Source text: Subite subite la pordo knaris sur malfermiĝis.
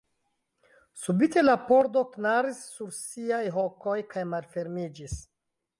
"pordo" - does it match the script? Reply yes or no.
yes